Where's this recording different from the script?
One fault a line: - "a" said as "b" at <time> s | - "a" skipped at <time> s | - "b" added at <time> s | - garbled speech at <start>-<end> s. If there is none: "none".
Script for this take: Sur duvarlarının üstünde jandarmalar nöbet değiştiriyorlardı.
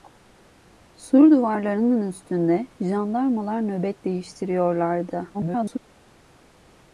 - garbled speech at 5.3-5.8 s